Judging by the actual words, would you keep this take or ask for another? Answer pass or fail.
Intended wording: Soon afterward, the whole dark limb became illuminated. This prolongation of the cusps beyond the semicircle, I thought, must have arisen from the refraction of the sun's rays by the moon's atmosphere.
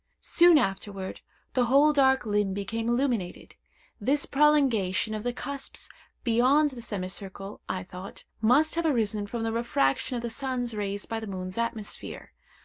pass